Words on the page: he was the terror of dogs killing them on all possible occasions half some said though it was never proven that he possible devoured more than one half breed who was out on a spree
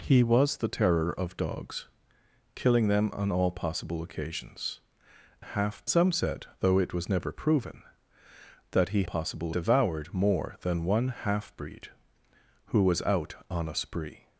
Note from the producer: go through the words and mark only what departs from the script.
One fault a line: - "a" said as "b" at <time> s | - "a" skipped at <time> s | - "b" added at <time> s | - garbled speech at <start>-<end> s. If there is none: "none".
none